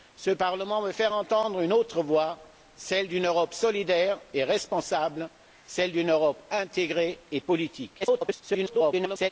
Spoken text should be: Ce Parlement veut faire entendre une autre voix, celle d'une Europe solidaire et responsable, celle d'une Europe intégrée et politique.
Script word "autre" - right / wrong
right